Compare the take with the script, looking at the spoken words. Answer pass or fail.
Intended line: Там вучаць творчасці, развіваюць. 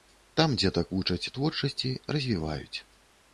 fail